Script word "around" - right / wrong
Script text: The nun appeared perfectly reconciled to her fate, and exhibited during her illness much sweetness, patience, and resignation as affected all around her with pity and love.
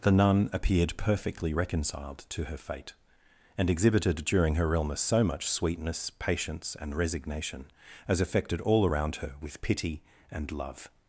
right